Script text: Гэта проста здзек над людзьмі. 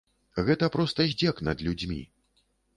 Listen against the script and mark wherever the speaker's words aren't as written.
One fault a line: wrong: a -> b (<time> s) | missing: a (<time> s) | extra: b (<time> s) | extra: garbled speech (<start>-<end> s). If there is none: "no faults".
no faults